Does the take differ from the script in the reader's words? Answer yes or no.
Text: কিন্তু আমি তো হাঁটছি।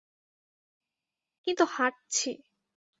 yes